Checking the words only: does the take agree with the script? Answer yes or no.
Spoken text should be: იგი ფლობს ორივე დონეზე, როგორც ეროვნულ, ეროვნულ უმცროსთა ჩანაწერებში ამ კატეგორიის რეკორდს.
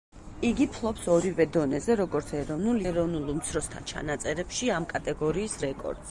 yes